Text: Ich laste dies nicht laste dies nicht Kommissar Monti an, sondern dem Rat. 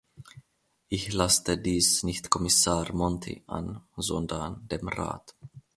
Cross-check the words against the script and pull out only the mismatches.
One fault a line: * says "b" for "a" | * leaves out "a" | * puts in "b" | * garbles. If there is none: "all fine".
* leaves out "laste dies nicht"